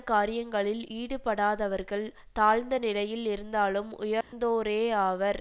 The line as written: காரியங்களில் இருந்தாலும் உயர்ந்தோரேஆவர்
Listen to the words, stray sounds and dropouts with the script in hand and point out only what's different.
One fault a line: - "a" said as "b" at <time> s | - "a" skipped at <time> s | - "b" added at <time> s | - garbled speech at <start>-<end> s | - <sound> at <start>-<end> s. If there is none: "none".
- "ஈடுபடாதவர்கள் தாழ்ந்த நிலையில்" added at 1.0 s
- dropout at 4.2-4.3 s